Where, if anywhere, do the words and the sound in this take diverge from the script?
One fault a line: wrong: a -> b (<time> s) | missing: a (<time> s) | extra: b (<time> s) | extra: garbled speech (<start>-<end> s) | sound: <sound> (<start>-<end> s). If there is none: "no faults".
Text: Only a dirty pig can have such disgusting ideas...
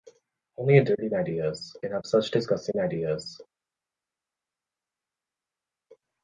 wrong: pig -> ideas (1.1 s)